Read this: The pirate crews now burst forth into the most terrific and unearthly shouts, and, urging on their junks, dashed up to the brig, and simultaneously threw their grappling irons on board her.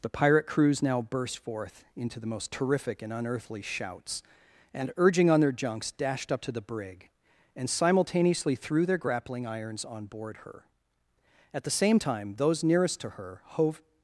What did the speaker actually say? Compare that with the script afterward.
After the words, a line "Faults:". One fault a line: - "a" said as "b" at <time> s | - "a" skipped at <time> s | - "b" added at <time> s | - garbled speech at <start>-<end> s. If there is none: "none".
The pirate crews now burst forth into the most terrific and unearthly shouts, and, urging on their junks, dashed up to the brig, and simultaneously threw their grappling irons on board her. At the same time those nearest to her hove
Faults:
- "At the same time those nearest to her hove" added at 11.5 s